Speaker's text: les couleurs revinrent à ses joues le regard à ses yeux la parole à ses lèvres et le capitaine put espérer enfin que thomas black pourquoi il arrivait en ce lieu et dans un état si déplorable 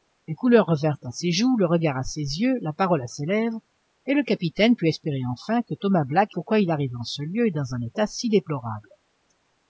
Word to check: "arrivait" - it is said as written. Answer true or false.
true